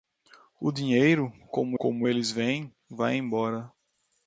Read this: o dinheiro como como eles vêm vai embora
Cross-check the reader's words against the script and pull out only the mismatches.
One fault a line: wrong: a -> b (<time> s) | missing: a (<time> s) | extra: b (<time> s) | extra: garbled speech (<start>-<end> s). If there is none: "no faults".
no faults